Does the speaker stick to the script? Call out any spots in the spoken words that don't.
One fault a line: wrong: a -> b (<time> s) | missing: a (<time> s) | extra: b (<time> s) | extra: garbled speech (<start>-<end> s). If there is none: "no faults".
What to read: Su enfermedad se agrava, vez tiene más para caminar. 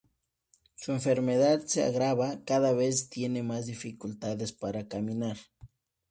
extra: cada (2.4 s)
extra: dificultades (3.7 s)